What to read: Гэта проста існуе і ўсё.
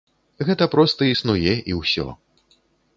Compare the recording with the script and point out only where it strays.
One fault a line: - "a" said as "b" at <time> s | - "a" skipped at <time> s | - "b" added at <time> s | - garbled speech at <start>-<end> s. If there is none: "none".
none